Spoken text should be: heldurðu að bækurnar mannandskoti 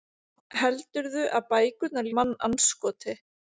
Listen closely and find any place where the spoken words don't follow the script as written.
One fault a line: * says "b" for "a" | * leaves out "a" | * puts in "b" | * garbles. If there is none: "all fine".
all fine